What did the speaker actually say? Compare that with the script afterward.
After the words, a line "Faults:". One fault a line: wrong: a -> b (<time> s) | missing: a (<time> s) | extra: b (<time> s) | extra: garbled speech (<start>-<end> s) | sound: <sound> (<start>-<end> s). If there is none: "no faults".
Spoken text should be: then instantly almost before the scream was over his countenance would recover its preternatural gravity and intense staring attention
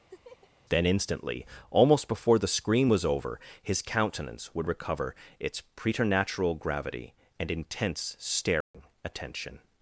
then instantly almost before the scream was over his countenance would recover its preternatural gravity and intense staring attention
Faults:
sound: laugh (0.1-0.5 s)
sound: dropout (8.6-8.7 s)